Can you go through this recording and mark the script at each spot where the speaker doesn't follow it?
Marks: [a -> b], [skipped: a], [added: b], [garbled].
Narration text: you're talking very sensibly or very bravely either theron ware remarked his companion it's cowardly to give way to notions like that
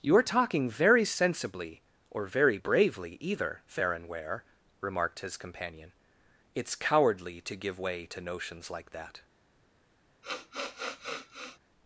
you're talking very sensibly or very bravely either theron ware remarked his companion it's cowardly to give way to notions like that